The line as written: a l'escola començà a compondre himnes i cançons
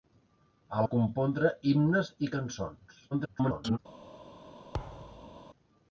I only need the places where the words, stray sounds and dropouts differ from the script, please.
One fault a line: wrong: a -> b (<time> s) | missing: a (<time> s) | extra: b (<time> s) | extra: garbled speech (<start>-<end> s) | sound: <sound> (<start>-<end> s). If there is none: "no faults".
missing: l'escola començà (0.8 s)
extra: garbled speech (3.1-3.8 s)
sound: thud (4.7-5.4 s)